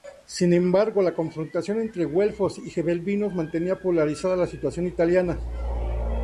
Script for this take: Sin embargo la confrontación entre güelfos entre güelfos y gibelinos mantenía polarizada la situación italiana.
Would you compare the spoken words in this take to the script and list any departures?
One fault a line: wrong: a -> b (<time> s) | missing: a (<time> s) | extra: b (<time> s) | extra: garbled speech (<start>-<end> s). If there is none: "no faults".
missing: entre güelfos (2.6 s)